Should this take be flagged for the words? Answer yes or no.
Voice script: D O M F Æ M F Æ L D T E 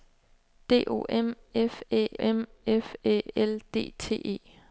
no